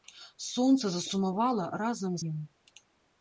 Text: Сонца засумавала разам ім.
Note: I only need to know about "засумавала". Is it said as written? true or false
true